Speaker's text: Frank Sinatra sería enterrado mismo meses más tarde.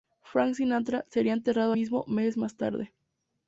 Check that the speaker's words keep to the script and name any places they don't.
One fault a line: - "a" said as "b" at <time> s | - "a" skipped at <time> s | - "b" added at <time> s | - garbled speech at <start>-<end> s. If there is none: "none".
none